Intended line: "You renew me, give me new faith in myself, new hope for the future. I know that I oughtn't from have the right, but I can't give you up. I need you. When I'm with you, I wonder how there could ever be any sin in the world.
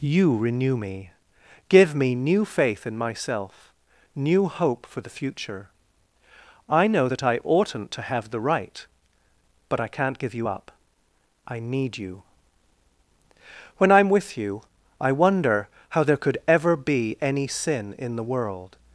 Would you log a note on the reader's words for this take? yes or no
yes